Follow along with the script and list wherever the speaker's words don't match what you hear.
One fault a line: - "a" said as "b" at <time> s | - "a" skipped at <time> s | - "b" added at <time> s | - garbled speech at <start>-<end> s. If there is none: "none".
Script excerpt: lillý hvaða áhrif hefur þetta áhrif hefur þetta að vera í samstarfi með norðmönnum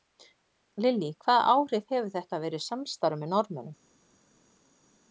- "áhrif hefur þetta" skipped at 2.4 s